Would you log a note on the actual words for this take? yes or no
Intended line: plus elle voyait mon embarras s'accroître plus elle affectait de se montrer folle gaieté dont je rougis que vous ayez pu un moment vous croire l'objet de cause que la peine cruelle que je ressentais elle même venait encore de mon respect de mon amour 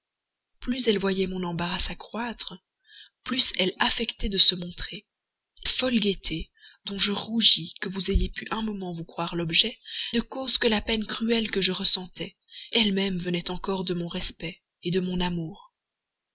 no